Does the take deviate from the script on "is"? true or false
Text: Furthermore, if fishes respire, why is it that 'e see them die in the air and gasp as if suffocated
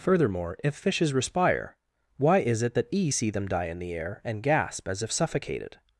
false